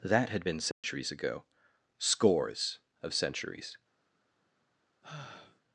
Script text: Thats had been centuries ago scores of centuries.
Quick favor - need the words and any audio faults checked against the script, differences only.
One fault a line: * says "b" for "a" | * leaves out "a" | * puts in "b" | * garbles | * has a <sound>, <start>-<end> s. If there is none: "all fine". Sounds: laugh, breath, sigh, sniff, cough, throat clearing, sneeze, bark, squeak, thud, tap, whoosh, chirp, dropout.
* says "That" for "Thats"
* has a dropout, 0.7-0.8 s
* has a sigh, 5.0-5.6 s